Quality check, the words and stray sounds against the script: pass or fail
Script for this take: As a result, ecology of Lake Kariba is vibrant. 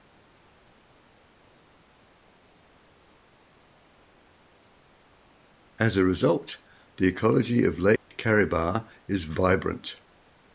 fail